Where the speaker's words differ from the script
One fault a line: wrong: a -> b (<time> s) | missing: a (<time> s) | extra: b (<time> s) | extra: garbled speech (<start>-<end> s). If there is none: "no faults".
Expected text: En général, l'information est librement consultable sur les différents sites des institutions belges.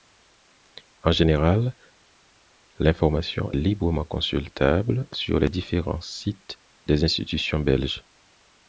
missing: est (3.5 s)